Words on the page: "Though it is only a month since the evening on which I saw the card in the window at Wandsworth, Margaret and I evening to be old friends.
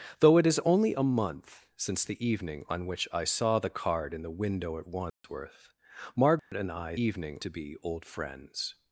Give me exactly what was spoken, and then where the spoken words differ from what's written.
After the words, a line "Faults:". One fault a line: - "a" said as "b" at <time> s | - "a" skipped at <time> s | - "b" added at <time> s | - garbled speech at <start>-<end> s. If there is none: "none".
"Though it is only a month since the evening on which I saw the card in the window at Wandsworth, Margaret and I evening to be old friends.
Faults:
none